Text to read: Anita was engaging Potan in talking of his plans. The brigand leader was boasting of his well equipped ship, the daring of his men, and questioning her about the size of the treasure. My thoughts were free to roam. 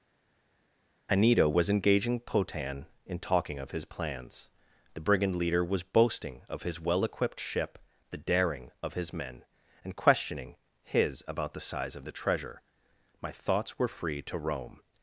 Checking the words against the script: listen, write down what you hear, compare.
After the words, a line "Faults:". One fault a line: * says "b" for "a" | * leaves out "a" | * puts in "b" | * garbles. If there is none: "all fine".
Anita was engaging Potan in talking of his plans. The brigand leader was boasting of his well equipped ship, the daring of his men, and questioning his about the size of the treasure. My thoughts were free to roam.
Faults:
* says "his" for "her"